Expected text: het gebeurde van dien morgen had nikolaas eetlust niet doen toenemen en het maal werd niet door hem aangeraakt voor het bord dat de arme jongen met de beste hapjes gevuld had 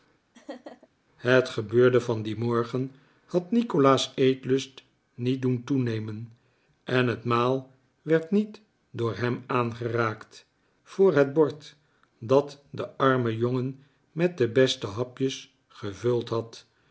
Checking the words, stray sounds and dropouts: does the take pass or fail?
fail